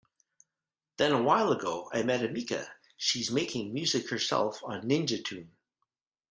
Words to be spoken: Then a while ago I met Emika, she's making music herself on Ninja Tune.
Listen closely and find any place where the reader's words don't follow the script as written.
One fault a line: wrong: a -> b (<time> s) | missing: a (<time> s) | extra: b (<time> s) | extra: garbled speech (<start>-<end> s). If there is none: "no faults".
no faults